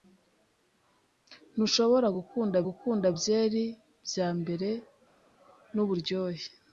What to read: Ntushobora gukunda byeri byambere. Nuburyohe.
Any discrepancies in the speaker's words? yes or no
yes